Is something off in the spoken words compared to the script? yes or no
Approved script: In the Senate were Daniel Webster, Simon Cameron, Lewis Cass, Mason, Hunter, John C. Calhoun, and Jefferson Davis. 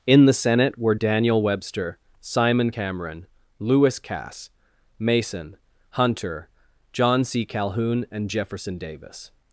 no